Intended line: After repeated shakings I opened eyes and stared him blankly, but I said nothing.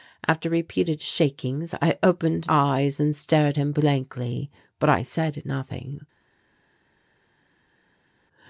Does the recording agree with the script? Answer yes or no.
yes